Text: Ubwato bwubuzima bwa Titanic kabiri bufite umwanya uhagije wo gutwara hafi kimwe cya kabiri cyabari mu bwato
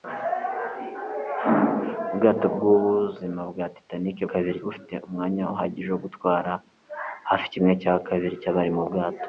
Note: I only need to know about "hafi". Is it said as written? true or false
true